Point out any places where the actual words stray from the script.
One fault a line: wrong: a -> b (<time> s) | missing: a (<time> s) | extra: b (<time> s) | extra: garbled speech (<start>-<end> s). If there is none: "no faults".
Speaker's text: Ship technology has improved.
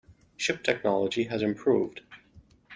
no faults